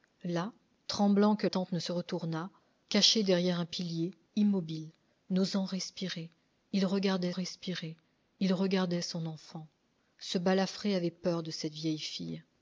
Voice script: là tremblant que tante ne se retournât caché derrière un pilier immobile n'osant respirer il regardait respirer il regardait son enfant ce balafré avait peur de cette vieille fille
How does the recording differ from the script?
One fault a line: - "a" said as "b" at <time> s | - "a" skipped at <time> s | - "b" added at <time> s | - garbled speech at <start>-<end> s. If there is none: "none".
none